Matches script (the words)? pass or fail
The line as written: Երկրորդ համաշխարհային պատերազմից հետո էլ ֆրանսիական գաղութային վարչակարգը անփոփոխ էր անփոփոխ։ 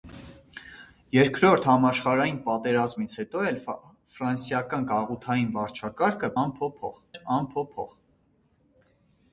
pass